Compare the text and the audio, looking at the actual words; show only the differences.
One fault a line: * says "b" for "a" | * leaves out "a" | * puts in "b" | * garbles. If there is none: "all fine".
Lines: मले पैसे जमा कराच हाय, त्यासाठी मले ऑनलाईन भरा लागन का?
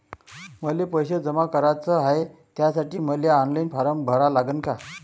* puts in "फारम"